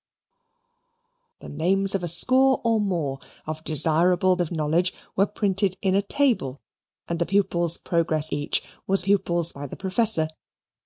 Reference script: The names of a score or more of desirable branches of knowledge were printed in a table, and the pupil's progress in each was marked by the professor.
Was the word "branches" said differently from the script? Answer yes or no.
yes